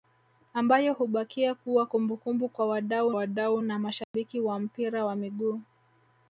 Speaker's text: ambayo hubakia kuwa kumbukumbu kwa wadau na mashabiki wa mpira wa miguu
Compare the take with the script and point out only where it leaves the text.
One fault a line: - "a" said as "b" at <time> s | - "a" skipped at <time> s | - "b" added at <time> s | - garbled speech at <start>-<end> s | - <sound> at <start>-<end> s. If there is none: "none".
- "wadau" added at 3.1 s
- dropout at 4.0-4.1 s